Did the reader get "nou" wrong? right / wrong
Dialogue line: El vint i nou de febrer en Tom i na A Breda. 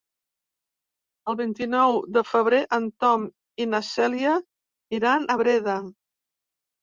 right